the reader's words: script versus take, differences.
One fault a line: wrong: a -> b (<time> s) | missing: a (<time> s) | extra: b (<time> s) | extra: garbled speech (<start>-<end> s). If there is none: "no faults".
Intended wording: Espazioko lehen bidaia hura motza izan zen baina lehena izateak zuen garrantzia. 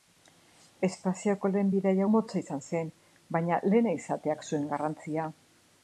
missing: hura (2.1 s)